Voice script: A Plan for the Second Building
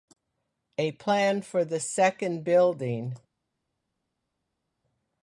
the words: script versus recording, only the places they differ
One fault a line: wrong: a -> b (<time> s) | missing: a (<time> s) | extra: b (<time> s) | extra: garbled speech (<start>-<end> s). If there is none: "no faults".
no faults